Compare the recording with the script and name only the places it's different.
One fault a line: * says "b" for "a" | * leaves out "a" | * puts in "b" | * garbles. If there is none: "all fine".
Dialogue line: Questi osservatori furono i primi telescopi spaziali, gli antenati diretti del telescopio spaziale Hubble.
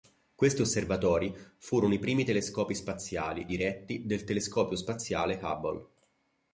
* leaves out "gli antenati"